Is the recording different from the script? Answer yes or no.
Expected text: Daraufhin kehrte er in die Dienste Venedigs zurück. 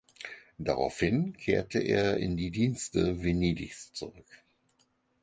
no